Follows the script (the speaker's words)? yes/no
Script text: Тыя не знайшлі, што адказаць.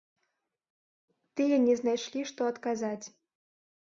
yes